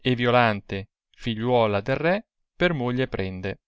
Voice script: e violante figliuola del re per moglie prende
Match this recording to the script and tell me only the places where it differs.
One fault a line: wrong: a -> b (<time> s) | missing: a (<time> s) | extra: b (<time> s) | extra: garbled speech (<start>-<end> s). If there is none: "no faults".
no faults